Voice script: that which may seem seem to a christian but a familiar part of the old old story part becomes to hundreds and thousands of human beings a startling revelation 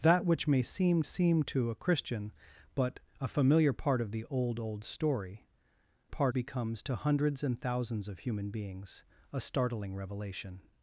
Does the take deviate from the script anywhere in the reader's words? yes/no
no